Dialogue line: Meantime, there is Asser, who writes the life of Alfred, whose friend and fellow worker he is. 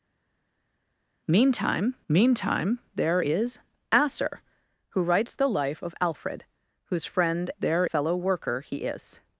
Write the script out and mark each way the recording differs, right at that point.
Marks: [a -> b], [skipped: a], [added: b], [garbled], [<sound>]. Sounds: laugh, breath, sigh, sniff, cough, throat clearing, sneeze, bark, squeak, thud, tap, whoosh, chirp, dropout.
Meantime, [added: meantime] there is Asser, who writes the life of Alfred, whose friend [and -> there] fellow worker he is.